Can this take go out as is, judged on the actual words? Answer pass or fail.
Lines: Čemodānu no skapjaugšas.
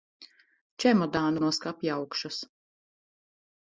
pass